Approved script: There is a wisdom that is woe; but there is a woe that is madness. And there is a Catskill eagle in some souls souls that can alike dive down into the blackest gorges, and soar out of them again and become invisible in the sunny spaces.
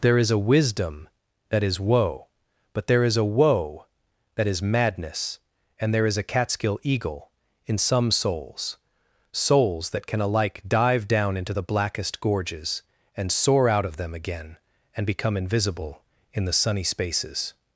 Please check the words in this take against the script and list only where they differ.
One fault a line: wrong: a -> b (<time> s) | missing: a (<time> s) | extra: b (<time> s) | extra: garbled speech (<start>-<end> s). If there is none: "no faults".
no faults